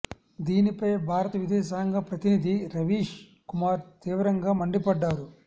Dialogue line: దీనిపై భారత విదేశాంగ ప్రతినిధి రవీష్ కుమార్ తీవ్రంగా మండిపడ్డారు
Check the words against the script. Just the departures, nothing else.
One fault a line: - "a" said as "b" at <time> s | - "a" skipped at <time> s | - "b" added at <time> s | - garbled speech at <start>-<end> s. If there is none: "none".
none